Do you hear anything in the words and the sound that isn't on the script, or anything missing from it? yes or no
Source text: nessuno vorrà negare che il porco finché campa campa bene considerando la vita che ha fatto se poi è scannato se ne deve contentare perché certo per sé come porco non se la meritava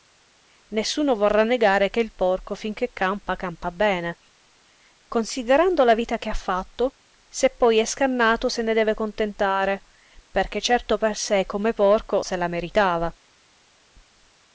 yes